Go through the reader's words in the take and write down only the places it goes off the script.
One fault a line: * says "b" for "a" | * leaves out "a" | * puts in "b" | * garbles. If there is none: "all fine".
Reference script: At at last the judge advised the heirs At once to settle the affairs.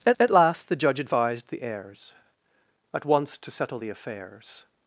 all fine